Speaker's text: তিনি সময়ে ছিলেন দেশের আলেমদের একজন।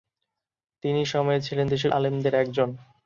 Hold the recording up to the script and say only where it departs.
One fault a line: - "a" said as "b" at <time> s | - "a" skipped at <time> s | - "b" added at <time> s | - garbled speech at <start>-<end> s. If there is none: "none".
none